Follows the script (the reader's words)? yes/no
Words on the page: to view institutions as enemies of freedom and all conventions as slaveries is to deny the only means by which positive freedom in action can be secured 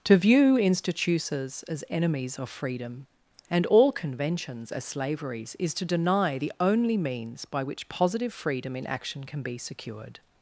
yes